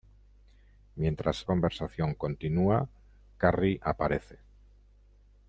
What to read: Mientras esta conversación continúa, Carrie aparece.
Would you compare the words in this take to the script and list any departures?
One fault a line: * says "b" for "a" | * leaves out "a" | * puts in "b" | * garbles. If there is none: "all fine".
* leaves out "esta"